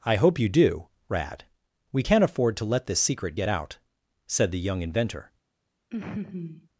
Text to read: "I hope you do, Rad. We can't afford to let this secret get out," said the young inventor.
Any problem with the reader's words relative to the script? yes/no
no